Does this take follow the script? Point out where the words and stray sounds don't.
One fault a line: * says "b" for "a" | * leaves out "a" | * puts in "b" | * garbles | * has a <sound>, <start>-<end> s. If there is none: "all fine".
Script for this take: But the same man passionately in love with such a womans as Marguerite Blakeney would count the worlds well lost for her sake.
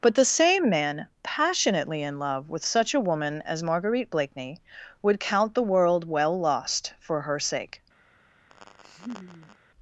* says "woman" for "womans"
* says "world" for "worlds"
* has a laugh, 8.5-9.6 s